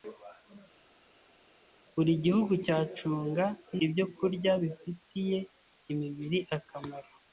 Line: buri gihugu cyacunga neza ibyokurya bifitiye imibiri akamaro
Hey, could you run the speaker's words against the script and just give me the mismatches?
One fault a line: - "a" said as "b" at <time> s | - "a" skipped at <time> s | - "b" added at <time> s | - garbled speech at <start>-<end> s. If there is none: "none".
- "neza" skipped at 3.4 s